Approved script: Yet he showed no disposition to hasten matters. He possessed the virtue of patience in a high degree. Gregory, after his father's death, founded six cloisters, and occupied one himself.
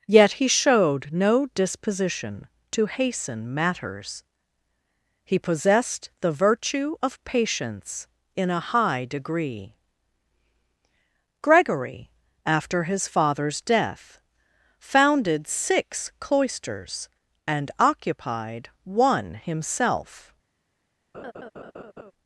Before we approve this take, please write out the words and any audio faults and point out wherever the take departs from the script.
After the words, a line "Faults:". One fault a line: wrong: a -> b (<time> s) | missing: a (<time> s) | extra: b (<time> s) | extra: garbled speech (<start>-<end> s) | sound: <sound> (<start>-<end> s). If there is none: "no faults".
Yet he showed no disposition to hasten matters. He possessed the virtue of patience in a high degree. Gregory, after his father's death, founded six cloisters, and occupied one himself.
Faults:
sound: laugh (21.1-22.1 s)